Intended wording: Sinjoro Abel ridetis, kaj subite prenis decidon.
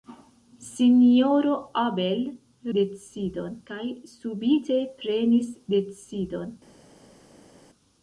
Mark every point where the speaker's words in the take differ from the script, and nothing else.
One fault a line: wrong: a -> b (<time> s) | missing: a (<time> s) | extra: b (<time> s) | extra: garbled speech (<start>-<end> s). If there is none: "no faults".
wrong: ridetis -> decidon (2.8 s)